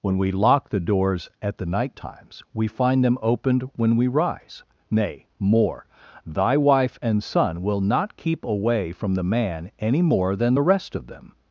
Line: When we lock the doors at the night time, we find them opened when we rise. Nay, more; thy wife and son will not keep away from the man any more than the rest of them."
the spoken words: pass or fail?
fail